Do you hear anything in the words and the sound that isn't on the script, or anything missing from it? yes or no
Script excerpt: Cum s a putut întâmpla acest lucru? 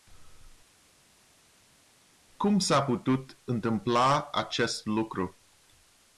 no